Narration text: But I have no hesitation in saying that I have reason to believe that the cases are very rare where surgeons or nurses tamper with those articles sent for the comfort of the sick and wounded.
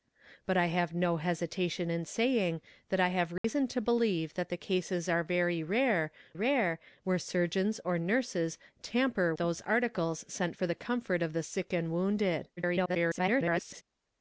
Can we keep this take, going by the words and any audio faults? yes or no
no